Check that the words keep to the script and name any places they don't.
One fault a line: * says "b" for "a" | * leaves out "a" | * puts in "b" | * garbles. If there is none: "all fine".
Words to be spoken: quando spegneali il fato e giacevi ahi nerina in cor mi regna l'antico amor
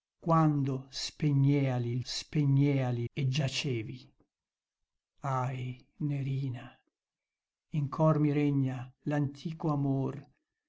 * says "spegneali" for "fato"